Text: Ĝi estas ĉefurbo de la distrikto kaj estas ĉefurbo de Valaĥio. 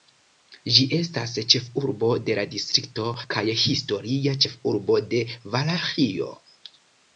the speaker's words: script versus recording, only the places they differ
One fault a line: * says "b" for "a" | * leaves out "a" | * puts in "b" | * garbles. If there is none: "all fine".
* says "historia" for "estas"